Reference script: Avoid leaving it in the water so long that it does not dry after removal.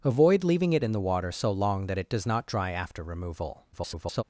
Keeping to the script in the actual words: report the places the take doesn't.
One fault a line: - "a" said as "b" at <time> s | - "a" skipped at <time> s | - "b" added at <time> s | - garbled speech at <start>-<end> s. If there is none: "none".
- garbled speech at 3.7-4.2 s